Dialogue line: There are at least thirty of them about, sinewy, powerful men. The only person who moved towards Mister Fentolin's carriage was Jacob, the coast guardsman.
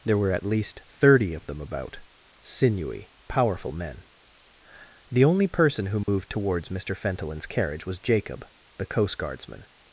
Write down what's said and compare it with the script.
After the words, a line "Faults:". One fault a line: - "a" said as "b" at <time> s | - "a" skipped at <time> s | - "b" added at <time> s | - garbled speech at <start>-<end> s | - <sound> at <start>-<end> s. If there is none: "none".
There were at least thirty of them about, sinewy, powerful men. The only person who moved towards Mister Fentolin's carriage was Jacob, the coast guardsman.
Faults:
- "are" said as "were" at 0.2 s
- dropout at 6.0-6.1 s